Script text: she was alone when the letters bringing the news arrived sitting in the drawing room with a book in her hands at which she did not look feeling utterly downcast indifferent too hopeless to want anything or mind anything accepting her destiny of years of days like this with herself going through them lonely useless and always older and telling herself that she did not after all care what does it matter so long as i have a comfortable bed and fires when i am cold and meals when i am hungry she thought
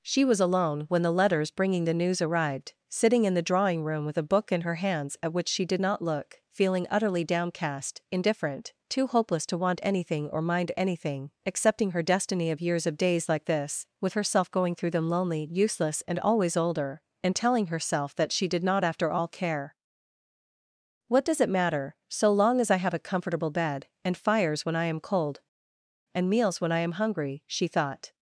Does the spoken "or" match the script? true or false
true